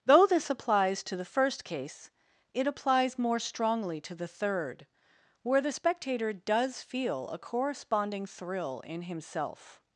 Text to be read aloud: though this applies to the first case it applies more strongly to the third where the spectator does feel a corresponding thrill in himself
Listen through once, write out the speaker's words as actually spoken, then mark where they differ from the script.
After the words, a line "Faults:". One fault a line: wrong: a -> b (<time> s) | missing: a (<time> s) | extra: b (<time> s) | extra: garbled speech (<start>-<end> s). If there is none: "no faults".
though this applies to the first case it applies more strongly to the third where the spectator does feel a corresponding thrill in himself
Faults:
no faults